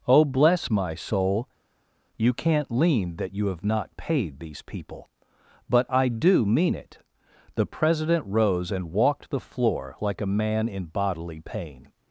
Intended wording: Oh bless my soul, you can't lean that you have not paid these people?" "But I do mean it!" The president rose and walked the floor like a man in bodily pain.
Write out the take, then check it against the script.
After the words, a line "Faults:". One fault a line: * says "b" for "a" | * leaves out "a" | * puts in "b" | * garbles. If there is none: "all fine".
Oh bless my soul, you can't lean that you have not paid these people?" "But I do mean it!" The president rose and walked the floor like a man in bodily pain.
Faults:
all fine